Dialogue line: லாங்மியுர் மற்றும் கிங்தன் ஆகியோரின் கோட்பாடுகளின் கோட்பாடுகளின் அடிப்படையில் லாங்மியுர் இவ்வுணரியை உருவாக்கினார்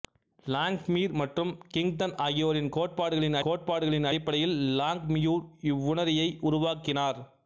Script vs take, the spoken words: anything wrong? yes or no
no